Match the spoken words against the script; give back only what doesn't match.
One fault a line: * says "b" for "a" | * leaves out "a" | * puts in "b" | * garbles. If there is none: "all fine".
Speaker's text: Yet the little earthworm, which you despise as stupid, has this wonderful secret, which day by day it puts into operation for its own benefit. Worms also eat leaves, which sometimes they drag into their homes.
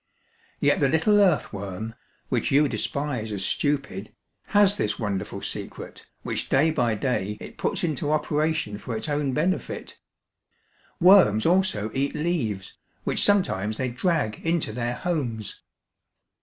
all fine